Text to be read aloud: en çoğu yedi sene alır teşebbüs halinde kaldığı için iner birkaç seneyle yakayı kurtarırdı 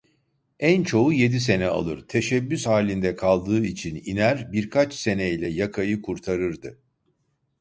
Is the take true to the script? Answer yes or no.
yes